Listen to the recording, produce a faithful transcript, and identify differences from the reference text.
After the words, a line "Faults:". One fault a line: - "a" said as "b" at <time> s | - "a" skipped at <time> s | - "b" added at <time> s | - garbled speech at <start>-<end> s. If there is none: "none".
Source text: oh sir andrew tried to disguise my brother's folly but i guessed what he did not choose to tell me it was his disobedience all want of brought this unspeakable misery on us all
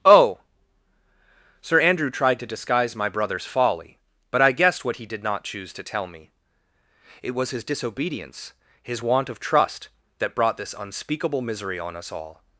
oh sir andrew tried to disguise my brother's folly but i guessed what he did not choose to tell me it was his disobedience his want of trust that brought this unspeakable misery on us all
Faults:
- "all" said as "his" at 8.8 s
- "trust that" added at 9.4 s